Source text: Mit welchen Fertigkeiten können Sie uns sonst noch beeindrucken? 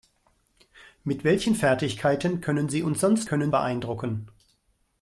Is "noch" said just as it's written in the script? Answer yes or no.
no